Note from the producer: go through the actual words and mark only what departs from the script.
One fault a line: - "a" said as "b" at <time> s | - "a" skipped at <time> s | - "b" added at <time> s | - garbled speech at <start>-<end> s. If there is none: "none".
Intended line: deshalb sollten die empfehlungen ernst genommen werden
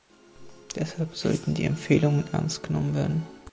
none